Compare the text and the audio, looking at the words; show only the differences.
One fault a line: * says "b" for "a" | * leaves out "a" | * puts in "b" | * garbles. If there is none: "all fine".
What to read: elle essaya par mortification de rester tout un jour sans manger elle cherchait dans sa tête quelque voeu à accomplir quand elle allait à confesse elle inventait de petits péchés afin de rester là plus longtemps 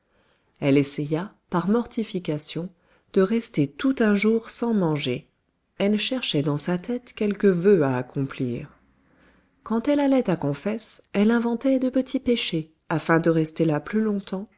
all fine